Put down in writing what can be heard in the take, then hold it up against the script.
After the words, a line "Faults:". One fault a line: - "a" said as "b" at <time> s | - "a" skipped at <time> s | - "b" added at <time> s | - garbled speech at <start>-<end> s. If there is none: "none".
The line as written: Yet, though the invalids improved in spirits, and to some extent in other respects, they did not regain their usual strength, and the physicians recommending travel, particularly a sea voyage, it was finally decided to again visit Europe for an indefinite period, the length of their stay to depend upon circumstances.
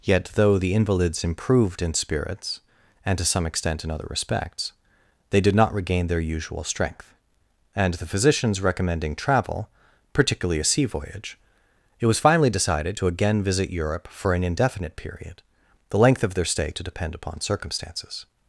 Yet, though the invalids improved in spirits, and to some extent in other respects, they did not regain their usual strength, and the physicians recommending travel, particularly a sea voyage, it was finally decided to again visit Europe for an indefinite period, the length of their stay to depend upon circumstances.
Faults:
none